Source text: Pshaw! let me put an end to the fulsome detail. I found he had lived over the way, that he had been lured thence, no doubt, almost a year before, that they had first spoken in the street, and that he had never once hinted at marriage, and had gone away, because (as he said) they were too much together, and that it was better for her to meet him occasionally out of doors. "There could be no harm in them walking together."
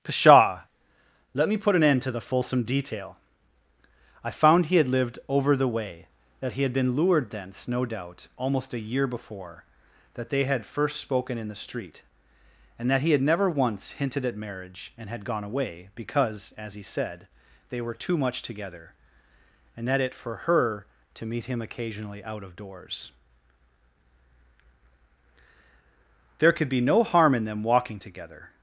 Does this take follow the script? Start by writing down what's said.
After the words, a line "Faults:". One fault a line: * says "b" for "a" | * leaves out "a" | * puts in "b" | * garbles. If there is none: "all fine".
Pshaw! let me put an end to the fulsome detail. I found he had lived over the way, that he had been lured thence, no doubt, almost a year before, that they had first spoken in the street, and that he had never once hinted at marriage, and had gone away, because (as he said) they were too much together, and that it for her to meet him occasionally out of doors. "There could be no harm in them walking together."
Faults:
* leaves out "was better"